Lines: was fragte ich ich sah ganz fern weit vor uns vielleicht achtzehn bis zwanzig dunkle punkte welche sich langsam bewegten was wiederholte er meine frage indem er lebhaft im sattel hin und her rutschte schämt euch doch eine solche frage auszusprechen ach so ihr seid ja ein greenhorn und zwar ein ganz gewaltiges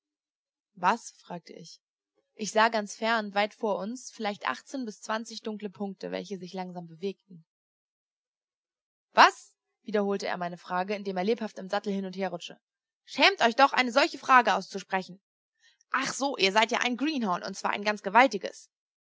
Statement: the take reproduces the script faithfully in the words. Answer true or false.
true